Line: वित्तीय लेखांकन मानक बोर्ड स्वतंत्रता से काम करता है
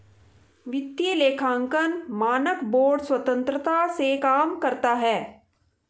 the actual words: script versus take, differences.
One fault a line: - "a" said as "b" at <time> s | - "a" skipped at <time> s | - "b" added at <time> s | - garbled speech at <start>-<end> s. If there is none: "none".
none